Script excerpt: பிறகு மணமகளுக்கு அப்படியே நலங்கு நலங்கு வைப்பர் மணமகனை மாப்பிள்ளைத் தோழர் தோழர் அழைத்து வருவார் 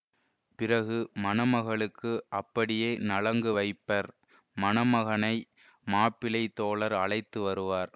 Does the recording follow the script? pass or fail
fail